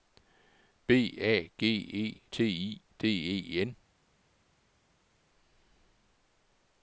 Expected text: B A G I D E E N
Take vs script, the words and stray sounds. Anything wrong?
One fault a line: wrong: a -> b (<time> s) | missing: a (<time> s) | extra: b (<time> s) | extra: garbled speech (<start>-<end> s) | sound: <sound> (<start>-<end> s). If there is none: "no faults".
extra: E T (1.7 s)
missing: E (3.6 s)